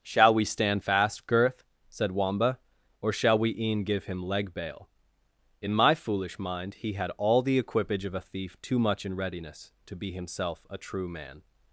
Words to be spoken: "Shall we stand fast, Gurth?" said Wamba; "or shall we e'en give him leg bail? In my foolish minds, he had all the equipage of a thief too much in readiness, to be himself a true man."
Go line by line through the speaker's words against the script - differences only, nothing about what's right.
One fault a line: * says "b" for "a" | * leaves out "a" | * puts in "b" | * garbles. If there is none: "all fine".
* says "mind" for "minds"